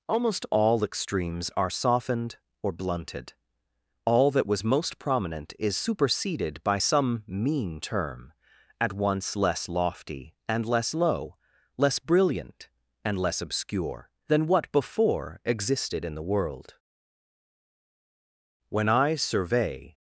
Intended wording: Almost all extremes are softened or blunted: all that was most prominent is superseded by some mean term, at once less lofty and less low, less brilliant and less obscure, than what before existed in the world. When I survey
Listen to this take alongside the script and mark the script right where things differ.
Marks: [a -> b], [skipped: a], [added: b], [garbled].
Almost all extremes are softened or blunted: all that was most prominent is superseded by some mean term, at once less lofty and less low, less brilliant and less obscure, than what before existed in the world. When I survey